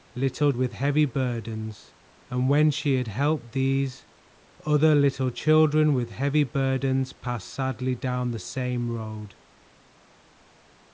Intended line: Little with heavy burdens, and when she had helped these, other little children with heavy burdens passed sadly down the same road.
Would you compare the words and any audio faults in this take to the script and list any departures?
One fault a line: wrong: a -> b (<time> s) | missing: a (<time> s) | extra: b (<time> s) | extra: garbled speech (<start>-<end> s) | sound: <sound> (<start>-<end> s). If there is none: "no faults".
no faults